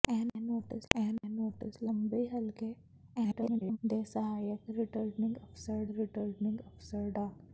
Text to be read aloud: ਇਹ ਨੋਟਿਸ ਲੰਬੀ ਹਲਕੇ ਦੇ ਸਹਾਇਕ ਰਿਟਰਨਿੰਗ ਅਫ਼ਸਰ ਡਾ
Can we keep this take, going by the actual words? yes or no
no